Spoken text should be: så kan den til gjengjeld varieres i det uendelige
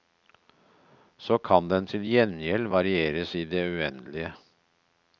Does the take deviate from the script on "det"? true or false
false